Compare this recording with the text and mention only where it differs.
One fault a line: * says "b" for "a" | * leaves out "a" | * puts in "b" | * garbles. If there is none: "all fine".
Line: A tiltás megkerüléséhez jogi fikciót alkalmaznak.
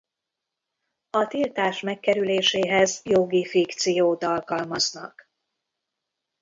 all fine